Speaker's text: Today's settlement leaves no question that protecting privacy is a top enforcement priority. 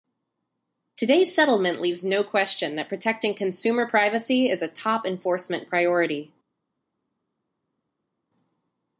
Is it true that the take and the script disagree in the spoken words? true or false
true